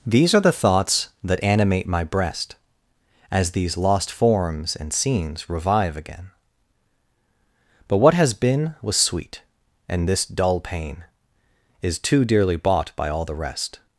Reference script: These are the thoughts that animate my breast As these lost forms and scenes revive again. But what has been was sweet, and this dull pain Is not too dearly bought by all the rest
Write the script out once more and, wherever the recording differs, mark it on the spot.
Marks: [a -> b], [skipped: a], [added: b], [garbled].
These are the thoughts that animate my breast As these lost forms and scenes revive again. But what has been was sweet, and this dull pain Is [skipped: not] too dearly bought by all the rest